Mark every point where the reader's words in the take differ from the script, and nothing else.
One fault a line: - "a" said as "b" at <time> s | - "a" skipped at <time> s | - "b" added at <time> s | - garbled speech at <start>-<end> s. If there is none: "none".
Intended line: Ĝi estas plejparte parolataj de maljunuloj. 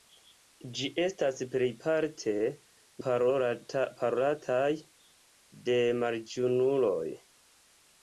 none